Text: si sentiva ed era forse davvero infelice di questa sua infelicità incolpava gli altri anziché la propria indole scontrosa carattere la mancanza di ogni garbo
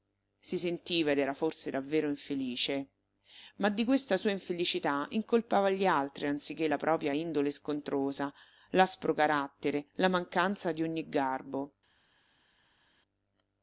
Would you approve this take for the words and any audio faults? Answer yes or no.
no